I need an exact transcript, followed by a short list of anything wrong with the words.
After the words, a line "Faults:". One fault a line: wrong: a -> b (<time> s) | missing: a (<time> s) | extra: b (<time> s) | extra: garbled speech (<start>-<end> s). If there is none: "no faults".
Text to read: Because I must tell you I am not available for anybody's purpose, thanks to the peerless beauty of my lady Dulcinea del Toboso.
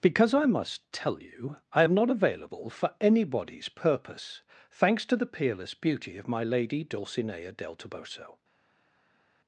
Because I must tell you I am not available for anybody's purpose, thanks to the peerless beauty of my lady Dulcinea del Toboso.
Faults:
no faults